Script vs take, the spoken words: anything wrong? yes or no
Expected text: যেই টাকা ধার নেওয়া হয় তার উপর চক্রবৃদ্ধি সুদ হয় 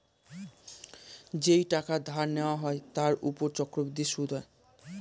no